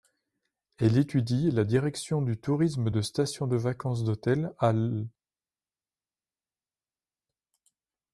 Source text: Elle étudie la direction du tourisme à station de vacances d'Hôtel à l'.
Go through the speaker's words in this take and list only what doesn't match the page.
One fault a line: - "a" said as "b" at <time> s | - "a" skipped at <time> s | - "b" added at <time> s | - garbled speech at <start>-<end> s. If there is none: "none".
- "à" said as "de" at 2.9 s